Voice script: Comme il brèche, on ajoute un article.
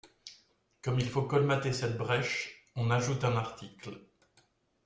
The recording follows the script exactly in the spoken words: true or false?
false